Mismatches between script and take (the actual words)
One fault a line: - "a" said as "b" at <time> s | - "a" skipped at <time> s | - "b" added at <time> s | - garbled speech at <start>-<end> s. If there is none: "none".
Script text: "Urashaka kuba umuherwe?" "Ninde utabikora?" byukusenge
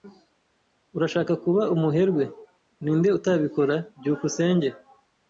none